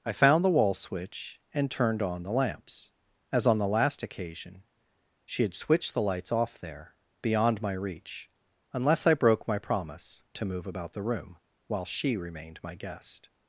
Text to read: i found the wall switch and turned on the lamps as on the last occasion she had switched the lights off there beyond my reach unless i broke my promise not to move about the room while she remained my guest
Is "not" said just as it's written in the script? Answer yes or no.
no